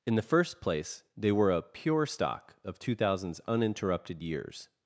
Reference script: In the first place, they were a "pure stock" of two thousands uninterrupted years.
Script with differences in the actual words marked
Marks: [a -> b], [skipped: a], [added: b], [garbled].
In the first place, they were a "pure stock" of two thousands uninterrupted years.